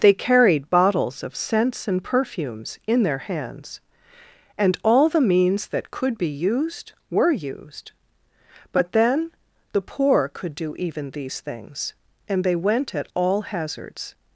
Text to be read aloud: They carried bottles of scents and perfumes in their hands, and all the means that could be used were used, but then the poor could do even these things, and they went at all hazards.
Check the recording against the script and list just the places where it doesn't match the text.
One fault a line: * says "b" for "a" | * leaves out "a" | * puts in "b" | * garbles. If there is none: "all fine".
all fine